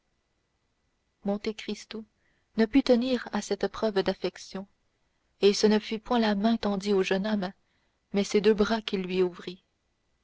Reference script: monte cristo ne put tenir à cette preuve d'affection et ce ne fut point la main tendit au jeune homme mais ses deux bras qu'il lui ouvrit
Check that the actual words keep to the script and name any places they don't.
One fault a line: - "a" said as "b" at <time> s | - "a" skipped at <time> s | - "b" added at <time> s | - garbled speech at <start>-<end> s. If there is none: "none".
none